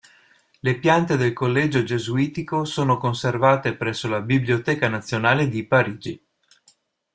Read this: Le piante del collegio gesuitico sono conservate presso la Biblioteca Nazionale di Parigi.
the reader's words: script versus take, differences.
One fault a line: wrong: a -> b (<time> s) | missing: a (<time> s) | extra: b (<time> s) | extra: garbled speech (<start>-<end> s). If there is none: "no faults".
no faults